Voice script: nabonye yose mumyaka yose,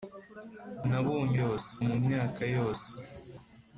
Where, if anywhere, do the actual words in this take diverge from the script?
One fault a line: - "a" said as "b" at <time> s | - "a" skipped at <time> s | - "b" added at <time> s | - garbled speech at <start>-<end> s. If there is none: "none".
none